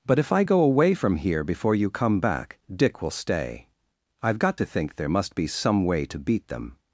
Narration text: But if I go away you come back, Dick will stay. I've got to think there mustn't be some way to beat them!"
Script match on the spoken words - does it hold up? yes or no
no